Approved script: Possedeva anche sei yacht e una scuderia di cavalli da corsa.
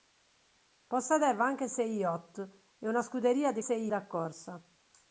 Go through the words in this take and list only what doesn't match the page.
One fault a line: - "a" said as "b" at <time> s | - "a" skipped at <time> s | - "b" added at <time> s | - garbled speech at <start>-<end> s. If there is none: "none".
- "cavalli" said as "sei" at 3.6 s